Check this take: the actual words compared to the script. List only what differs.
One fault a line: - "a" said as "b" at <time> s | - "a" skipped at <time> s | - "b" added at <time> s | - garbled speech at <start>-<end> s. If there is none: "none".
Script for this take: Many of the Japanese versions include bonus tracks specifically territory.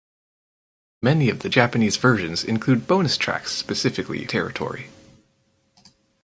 none